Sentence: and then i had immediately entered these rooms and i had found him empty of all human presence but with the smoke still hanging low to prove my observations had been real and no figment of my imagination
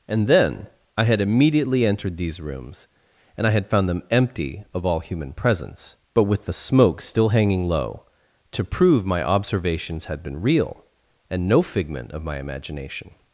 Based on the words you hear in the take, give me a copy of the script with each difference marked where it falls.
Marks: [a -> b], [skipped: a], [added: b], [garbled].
and then i had immediately entered these rooms and i had found [him -> them] empty of all human presence but with the smoke still hanging low to prove my observations had been real and no figment of my imagination